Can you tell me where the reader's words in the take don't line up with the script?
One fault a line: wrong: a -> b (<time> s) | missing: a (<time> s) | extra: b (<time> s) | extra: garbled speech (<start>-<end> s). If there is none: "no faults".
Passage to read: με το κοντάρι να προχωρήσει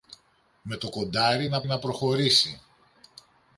extra: να (1.7 s)